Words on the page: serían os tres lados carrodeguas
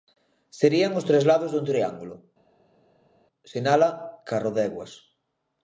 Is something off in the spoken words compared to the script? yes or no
yes